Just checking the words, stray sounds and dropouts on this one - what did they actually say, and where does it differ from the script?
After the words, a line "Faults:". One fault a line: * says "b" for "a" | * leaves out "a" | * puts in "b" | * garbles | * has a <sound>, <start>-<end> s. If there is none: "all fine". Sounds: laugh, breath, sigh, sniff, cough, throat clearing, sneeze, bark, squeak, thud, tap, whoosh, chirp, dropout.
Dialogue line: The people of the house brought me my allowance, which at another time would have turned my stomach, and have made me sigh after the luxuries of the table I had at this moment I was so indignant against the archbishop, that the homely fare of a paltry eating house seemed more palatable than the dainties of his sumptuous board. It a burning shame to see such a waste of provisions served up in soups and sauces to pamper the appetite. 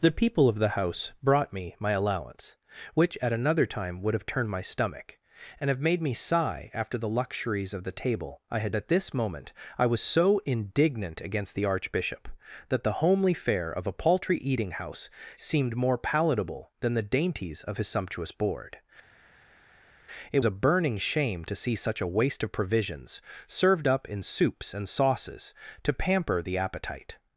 The people of the house brought me my allowance, which at another time would have turned my stomach, and have made me sigh after the luxuries of the table I had at this moment I was so indignant against the archbishop, that the homely fare of a paltry eating house seemed more palatable than the dainties of his sumptuous board. It a burning shame to see such a waste of provisions served up in soups and sauces to pamper the appetite.
Faults:
all fine